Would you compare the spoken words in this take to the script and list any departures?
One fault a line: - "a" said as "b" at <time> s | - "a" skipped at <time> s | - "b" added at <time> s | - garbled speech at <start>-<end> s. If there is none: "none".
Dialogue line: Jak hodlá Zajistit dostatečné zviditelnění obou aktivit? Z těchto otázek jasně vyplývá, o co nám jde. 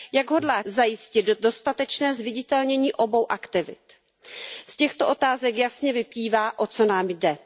none